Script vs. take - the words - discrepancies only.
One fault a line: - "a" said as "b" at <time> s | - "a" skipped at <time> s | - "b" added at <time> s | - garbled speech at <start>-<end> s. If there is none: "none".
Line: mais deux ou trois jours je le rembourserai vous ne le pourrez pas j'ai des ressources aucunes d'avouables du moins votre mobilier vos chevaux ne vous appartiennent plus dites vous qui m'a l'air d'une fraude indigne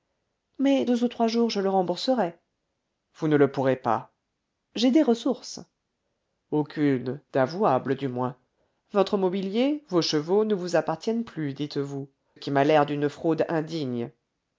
none